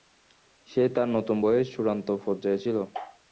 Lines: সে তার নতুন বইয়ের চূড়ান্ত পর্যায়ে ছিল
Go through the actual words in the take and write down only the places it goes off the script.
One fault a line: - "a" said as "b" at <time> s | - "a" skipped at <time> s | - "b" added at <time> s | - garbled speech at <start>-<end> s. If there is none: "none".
none